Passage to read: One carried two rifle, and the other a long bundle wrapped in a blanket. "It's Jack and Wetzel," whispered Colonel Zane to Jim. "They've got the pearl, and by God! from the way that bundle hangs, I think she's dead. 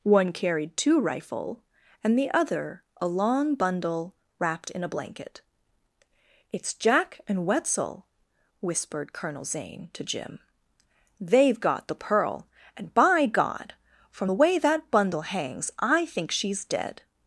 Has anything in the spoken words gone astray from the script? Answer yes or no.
no